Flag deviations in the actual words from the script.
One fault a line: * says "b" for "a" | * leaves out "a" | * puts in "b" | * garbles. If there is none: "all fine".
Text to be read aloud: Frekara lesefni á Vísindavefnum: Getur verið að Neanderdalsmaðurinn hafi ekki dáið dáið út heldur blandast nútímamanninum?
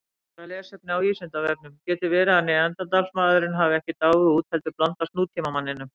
* leaves out "dáið"